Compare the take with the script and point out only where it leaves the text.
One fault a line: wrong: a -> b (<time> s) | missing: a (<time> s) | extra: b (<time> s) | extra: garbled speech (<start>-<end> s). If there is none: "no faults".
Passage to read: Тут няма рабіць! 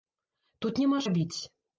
no faults